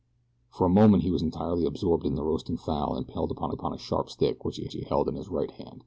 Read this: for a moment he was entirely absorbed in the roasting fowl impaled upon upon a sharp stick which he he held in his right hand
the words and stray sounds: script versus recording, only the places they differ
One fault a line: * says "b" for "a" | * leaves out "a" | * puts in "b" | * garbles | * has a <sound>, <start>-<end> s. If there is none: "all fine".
all fine